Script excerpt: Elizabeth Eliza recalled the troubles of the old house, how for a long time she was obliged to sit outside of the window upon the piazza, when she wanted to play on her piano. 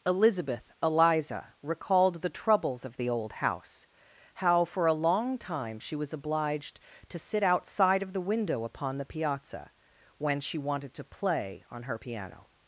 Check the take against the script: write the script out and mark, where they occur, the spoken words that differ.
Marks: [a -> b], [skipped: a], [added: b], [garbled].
Elizabeth Eliza recalled the troubles of the old house, how for a long time she was obliged to sit outside of the window upon the piazza, when she wanted to play on her piano.